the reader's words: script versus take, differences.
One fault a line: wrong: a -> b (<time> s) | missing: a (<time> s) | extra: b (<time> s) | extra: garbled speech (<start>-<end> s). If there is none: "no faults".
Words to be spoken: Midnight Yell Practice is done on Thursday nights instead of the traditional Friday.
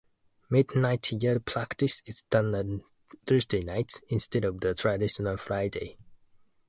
no faults